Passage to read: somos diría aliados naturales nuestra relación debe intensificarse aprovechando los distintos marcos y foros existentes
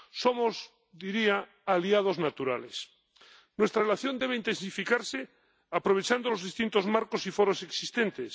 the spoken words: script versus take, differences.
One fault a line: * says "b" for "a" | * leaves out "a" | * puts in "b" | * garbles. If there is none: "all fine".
all fine